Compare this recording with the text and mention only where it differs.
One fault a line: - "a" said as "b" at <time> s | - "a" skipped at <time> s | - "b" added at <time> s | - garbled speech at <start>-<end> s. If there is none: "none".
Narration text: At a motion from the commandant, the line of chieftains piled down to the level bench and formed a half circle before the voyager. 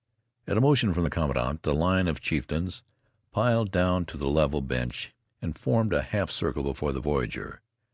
none